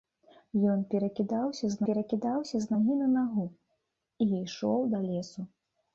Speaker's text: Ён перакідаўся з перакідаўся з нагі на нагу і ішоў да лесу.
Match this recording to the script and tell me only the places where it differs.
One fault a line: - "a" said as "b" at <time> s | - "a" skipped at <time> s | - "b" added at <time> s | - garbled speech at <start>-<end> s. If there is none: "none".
none